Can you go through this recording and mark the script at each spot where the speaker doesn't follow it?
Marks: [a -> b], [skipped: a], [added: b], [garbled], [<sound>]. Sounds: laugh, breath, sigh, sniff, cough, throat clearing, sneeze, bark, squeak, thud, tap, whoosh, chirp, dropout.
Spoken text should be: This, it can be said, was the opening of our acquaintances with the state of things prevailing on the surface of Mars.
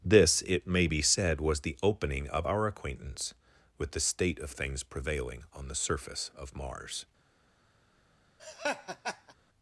This, it [can -> may] be said, was the opening of our [acquaintances -> acquaintance] with the state of things prevailing on the surface of Mars. [laugh]